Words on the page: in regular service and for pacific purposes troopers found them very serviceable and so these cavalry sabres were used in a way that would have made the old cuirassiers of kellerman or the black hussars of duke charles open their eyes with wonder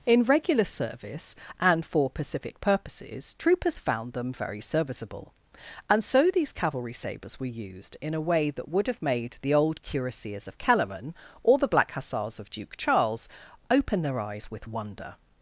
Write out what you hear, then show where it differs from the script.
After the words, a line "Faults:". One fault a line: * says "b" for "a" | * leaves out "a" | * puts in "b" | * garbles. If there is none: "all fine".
in regular service and for pacific purposes troopers found them very serviceable and so these cavalry sabres were used in a way that would have made the old cuirassiers of kellerman or the black hussars of duke charles open their eyes with wonder
Faults:
all fine